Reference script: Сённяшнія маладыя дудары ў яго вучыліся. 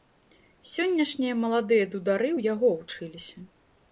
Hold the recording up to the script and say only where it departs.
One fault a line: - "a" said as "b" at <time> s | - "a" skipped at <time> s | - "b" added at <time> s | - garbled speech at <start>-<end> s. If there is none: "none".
none